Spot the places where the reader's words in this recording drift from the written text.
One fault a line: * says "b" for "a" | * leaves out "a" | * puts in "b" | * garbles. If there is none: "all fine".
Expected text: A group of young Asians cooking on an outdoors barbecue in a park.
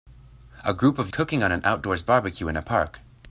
* leaves out "young Asians"